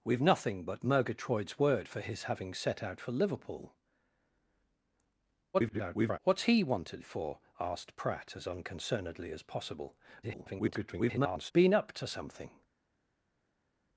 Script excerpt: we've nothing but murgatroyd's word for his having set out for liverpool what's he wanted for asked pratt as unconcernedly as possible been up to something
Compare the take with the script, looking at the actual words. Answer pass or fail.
fail